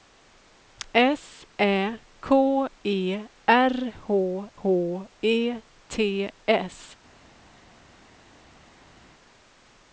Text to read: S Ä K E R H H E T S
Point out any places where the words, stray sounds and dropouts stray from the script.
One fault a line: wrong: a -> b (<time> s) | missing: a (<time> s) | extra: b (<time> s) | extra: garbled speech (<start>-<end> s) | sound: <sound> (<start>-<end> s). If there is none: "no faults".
no faults